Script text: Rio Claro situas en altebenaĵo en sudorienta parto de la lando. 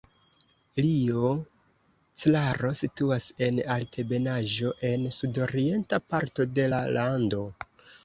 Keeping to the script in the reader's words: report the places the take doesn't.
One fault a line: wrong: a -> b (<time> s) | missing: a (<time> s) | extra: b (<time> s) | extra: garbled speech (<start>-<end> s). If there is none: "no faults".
no faults